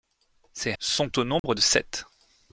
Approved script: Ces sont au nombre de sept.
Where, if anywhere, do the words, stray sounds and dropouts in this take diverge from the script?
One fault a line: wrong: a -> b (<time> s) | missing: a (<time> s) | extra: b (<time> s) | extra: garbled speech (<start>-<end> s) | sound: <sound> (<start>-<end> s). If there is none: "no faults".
sound: dropout (1.4-1.4 s)